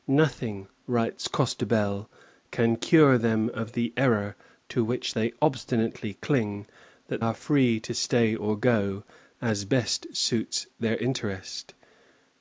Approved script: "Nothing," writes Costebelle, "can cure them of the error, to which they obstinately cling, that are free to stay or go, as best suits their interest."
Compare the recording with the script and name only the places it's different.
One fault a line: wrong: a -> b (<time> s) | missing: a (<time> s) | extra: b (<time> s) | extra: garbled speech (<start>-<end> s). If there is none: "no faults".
no faults